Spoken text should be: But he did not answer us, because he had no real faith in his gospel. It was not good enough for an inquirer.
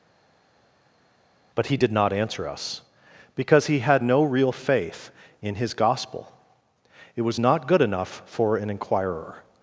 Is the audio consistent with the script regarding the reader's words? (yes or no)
yes